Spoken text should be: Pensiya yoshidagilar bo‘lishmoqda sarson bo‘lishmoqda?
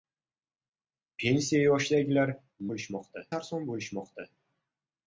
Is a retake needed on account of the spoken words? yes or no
no